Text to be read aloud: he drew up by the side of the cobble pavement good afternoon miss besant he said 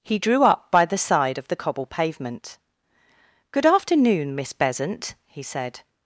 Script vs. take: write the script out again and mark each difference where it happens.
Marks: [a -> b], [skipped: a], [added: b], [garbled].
he drew up by the side of the cobble pavement good afternoon miss besant he said